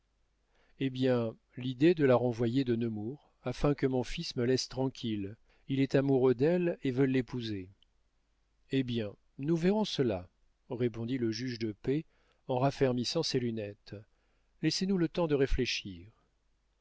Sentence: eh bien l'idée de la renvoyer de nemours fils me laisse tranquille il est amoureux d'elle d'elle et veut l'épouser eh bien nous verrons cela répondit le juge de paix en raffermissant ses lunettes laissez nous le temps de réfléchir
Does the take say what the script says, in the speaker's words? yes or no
no